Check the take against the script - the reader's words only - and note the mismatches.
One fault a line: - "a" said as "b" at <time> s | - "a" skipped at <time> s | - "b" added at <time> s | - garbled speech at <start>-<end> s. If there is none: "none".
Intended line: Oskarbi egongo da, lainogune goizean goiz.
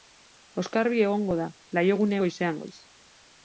none